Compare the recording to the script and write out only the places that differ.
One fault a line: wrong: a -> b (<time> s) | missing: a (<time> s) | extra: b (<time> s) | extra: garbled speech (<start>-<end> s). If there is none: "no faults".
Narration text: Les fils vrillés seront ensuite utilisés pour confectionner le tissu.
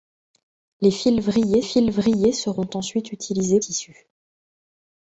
extra: fils vrillés (1.6 s)
missing: pour confectionner le (3.6 s)